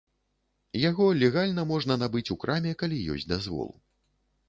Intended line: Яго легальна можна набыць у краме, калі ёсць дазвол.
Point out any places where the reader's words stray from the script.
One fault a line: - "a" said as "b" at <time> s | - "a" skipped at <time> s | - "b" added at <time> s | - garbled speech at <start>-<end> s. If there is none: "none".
none